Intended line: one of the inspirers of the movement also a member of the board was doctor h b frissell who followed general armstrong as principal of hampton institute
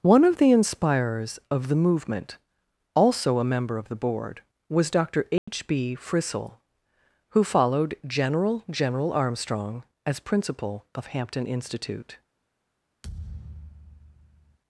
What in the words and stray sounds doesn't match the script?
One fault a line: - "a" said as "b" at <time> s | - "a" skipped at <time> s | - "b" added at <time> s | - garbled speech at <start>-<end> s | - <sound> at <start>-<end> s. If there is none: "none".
- dropout at 5.4-5.5 s
- "general" added at 8.7 s
- thud at 13.0-14.6 s